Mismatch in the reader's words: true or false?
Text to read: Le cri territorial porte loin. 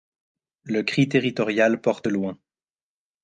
false